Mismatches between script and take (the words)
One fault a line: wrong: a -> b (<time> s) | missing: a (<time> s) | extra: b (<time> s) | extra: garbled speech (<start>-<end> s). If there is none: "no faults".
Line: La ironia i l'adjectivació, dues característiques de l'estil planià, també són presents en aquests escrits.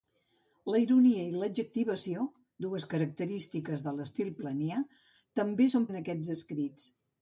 missing: presents (5.9 s)